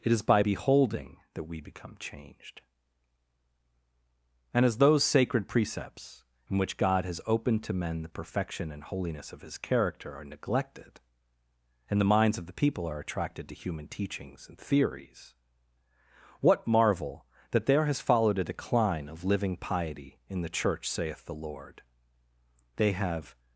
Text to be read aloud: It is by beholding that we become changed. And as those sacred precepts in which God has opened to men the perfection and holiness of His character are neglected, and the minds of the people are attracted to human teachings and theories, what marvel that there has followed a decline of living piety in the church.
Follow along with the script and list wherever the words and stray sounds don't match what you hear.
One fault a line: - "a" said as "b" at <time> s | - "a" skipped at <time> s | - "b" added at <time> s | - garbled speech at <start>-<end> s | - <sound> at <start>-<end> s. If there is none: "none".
- "Saith the Lord They have" added at 20.9 s